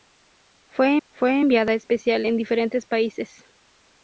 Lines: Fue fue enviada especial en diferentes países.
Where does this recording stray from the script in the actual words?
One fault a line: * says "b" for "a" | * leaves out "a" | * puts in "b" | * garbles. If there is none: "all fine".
all fine